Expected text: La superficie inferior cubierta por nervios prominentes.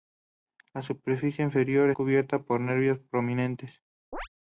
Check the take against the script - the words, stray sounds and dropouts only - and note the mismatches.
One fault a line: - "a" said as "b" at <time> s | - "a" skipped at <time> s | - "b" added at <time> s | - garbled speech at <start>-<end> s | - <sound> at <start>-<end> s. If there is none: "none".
- chirp at 4.1-4.3 s